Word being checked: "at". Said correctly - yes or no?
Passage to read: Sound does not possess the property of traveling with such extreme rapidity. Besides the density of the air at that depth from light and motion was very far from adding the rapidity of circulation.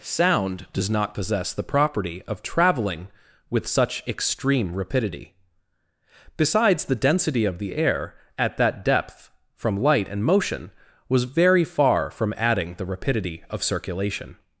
yes